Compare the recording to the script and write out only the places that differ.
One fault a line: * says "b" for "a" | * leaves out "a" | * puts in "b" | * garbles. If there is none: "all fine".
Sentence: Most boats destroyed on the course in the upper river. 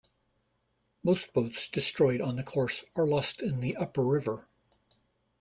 * puts in "are lost"